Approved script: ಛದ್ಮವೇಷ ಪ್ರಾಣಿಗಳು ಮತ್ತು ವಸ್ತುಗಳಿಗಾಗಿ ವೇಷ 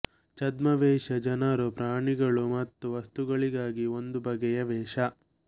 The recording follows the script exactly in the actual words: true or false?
false